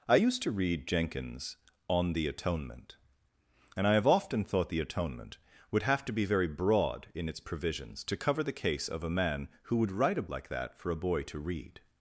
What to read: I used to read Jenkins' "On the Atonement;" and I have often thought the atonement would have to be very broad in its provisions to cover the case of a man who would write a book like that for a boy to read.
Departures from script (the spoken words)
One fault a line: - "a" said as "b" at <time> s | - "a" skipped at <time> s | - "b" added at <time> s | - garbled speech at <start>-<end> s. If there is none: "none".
- "book" skipped at 10.3 s